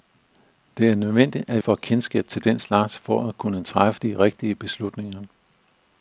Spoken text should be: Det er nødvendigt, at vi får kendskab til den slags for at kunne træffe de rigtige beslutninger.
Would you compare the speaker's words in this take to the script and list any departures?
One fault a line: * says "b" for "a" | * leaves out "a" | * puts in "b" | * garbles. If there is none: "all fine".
* leaves out "vi"